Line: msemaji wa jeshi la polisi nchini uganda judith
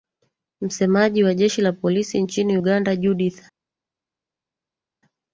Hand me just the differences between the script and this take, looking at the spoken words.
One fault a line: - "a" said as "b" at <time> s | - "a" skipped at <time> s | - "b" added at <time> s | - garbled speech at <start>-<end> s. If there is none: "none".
none